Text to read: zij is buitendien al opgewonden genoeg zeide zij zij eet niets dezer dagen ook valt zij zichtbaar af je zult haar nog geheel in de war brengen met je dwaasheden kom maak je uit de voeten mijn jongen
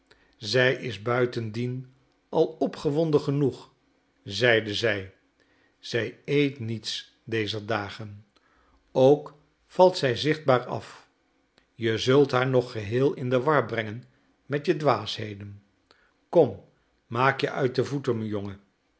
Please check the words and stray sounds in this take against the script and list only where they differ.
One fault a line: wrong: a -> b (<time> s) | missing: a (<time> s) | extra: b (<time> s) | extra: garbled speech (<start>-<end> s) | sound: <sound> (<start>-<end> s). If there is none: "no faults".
no faults